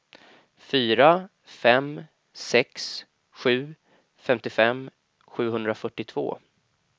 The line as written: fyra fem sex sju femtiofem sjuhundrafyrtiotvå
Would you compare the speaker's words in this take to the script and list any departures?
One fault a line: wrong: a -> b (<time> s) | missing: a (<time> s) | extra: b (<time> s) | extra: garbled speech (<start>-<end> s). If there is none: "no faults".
no faults